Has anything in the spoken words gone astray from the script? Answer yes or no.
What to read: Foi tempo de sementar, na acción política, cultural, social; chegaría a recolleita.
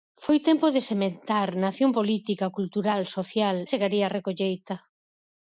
no